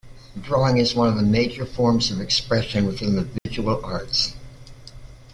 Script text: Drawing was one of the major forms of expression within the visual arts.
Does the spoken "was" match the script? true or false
false